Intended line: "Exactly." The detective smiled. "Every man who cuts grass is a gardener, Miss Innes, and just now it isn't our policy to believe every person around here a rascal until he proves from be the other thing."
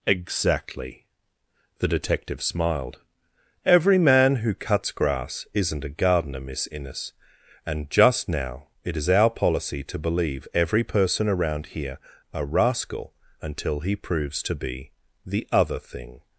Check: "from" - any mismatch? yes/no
yes